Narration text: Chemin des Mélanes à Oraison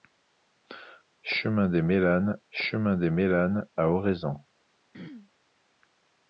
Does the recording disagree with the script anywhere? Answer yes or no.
yes